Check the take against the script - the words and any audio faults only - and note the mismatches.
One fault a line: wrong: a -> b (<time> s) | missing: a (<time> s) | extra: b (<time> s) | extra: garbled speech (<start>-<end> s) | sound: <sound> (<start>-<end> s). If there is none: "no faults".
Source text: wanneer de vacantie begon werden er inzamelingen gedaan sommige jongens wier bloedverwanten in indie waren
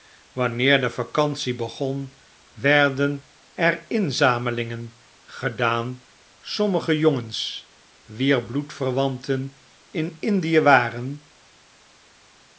no faults